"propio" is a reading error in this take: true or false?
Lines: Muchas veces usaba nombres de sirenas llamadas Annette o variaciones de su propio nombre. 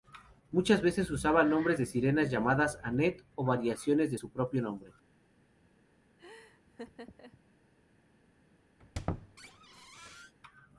false